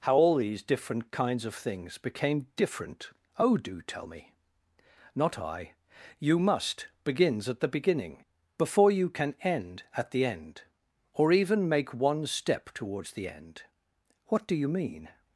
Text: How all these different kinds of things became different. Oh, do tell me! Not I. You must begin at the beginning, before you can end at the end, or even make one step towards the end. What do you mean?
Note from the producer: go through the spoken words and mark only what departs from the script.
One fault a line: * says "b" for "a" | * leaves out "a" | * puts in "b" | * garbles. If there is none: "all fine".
* says "begins" for "begin"